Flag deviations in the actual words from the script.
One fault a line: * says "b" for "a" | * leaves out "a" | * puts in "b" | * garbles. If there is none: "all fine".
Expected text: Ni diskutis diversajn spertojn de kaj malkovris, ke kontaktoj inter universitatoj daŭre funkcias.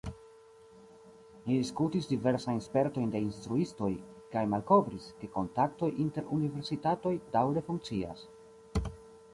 * puts in "instruistoj"